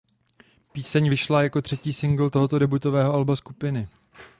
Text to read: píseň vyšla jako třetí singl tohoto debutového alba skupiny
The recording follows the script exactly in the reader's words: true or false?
true